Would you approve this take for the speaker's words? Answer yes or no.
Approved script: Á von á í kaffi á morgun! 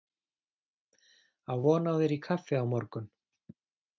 no